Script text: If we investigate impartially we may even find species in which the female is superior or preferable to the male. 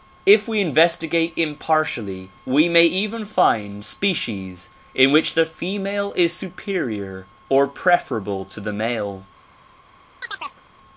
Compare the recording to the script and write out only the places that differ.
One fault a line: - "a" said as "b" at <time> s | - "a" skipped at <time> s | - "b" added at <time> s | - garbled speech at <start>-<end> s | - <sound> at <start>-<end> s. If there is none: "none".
- chirp at 10.2-10.6 s